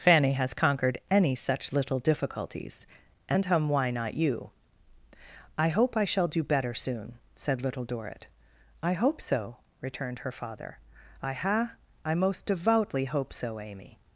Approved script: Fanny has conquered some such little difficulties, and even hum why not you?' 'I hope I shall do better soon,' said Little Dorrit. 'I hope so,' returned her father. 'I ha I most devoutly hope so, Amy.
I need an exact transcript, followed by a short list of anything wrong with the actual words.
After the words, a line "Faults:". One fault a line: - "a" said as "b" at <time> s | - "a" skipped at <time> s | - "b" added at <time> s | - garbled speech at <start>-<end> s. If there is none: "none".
Fanny has conquered any such little difficulties, and hum why not you?' 'I hope I shall do better soon,' said Little Dorrit. 'I hope so,' returned her father. 'I ha I most devoutly hope so, Amy.
Faults:
- "some" said as "any" at 1.1 s
- "even" skipped at 3.5 s